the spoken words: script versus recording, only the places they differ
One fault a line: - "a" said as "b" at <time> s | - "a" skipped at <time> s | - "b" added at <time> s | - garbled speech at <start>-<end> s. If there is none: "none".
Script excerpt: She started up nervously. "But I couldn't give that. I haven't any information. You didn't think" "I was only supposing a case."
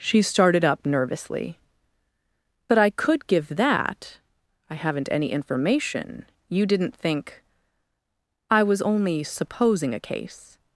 - "couldn't" said as "could" at 2.9 s